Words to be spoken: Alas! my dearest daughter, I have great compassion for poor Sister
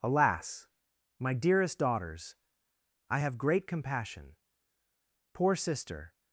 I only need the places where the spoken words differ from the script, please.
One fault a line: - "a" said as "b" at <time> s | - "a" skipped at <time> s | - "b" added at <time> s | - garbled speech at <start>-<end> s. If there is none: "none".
- "daughter" said as "daughters" at 1.8 s
- "for" skipped at 4.4 s